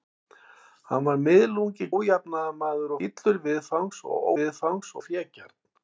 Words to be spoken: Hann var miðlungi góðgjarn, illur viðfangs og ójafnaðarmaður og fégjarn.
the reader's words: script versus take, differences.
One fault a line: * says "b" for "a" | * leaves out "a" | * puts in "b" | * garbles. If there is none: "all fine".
* says "ójafnaðarmaður" for "góðgjarn"
* says "viðfangs" for "ójafnaðarmaður"